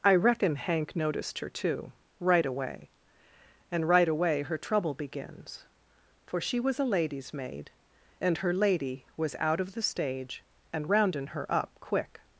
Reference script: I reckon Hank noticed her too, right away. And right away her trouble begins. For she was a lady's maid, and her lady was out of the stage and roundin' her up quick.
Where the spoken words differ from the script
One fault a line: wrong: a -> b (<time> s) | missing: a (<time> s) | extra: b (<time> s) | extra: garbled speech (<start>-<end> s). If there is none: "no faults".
no faults